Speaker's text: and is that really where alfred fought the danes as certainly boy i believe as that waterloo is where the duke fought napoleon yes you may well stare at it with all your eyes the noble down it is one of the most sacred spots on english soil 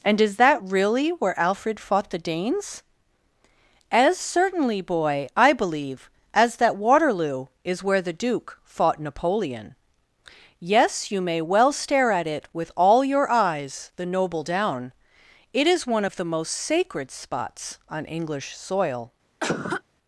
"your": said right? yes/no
yes